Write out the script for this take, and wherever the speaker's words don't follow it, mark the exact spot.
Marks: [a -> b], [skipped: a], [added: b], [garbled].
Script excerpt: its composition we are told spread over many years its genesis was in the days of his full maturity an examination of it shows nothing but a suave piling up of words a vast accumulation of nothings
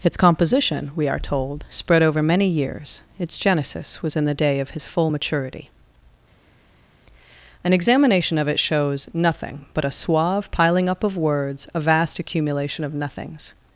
its composition we are told spread over many years its genesis was in the [days -> day] of his full maturity an examination of it shows nothing but a suave piling up of words a vast accumulation of nothings